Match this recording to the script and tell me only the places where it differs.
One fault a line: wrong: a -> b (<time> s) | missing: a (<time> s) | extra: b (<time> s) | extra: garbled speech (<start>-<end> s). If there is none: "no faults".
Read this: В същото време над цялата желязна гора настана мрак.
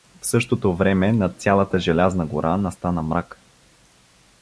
no faults